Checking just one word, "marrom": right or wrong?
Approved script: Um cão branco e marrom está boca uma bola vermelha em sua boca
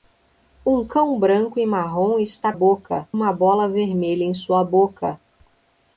right